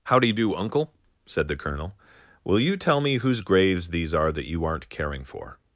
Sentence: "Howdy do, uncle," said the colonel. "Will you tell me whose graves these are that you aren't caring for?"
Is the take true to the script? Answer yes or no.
yes